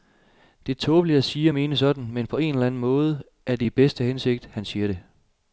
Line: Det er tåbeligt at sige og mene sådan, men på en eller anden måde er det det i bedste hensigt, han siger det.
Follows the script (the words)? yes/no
no